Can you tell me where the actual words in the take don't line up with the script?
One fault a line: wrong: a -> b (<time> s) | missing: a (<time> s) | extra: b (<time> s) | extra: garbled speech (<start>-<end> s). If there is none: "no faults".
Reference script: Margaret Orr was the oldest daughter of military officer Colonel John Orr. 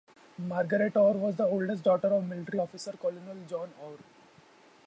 no faults